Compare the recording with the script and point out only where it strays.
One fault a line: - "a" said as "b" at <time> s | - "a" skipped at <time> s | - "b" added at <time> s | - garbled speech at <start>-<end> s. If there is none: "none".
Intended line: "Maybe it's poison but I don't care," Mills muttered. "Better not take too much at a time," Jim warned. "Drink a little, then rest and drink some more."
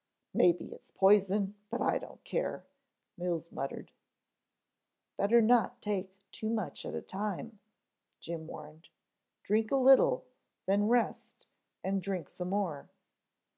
none